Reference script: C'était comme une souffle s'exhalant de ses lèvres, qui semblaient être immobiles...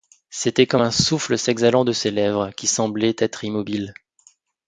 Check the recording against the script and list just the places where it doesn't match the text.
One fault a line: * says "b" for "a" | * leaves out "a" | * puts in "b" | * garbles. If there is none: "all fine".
* says "un" for "une"